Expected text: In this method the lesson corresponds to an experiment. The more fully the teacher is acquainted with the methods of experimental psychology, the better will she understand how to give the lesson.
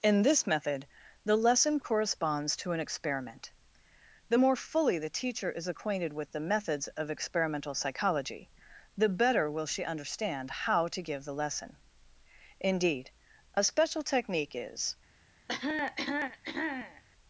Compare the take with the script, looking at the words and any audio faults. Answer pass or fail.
fail